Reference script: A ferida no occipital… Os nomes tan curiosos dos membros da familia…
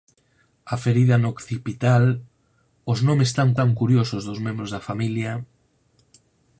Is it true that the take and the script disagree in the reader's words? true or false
true